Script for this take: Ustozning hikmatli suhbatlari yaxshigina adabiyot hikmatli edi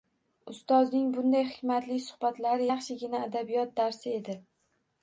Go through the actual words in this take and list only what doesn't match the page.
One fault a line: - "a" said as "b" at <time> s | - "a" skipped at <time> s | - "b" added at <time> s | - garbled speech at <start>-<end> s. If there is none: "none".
- "bunday" added at 1.2 s
- "hikmatli" said as "darsi" at 3.8 s